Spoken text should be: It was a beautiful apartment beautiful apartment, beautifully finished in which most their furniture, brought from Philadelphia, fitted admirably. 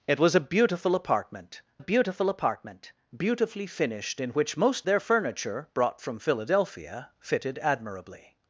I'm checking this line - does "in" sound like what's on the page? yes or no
yes